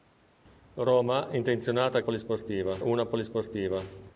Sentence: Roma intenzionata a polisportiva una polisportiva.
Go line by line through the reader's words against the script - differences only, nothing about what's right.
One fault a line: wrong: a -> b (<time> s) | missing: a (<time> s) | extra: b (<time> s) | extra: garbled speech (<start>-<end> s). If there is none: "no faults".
no faults